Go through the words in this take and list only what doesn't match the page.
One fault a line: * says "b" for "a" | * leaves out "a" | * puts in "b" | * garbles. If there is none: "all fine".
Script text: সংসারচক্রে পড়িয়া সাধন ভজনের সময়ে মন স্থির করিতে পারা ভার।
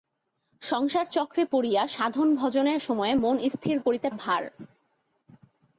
* leaves out "পারা"